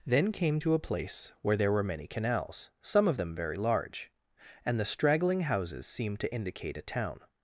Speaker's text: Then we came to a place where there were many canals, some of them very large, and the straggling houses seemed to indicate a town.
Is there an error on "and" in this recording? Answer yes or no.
no